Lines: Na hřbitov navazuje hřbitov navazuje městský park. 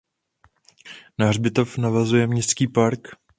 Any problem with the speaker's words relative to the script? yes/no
yes